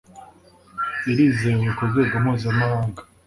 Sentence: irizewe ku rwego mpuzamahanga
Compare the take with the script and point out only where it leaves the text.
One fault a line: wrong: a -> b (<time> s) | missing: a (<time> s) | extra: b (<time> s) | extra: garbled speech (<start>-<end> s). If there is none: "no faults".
no faults